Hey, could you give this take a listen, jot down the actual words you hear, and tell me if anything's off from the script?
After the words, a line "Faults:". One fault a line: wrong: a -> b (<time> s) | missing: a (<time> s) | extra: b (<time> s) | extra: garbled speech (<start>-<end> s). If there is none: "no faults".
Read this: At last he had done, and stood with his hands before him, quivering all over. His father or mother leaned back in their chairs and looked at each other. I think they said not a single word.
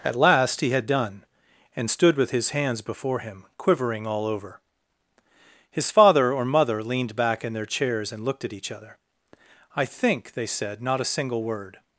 At last he had done, and stood with his hands before him, quivering all over. His father or mother leaned back in their chairs and looked at each other. I think they said not a single word.
Faults:
no faults